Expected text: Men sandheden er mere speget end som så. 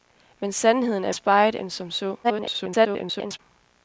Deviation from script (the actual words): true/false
true